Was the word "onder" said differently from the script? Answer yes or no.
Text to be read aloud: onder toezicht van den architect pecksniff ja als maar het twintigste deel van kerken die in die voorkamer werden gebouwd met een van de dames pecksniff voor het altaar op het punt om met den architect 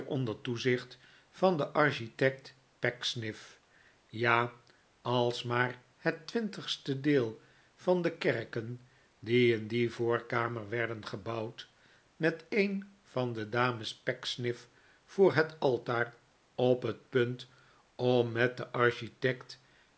no